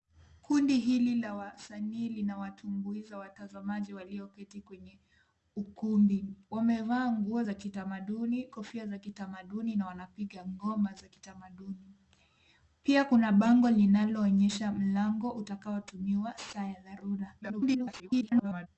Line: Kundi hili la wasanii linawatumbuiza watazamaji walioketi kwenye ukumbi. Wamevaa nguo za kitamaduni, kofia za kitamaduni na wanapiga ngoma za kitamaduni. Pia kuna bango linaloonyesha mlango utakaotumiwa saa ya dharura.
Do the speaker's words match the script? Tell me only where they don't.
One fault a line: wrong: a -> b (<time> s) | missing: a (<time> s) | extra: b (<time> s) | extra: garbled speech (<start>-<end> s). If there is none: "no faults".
extra: garbled speech (17.4-18.7 s)